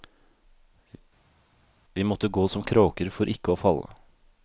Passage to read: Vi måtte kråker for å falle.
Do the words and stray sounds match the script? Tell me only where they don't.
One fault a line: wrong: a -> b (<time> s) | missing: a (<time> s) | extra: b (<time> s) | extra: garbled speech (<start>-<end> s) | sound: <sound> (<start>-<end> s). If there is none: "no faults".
extra: gå som (2.3 s)
extra: ikke (3.3 s)